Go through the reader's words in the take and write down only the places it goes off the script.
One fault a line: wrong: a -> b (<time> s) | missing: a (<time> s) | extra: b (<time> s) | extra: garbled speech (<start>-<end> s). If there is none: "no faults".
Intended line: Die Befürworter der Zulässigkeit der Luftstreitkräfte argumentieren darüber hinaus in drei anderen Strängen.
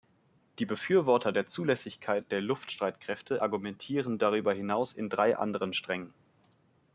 no faults